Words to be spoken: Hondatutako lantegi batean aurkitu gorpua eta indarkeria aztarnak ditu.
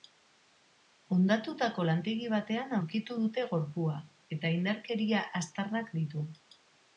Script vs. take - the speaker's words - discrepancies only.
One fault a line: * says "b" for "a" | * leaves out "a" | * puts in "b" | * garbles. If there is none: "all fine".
* puts in "dute"